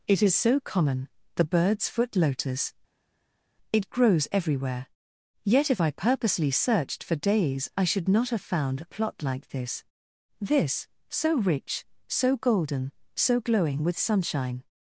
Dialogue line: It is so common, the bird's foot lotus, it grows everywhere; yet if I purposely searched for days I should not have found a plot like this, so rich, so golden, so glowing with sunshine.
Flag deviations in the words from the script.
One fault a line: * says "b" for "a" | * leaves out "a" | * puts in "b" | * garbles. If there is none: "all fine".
* puts in "this"